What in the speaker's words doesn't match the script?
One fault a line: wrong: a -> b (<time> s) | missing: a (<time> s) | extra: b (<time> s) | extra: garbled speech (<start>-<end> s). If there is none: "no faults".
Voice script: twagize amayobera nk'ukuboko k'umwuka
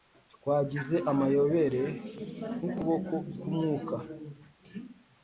no faults